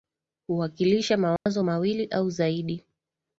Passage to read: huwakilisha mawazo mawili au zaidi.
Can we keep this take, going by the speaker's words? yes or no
yes